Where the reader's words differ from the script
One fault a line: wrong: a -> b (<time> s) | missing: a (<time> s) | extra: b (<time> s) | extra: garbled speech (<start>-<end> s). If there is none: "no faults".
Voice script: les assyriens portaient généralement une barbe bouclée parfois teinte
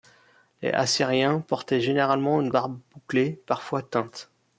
no faults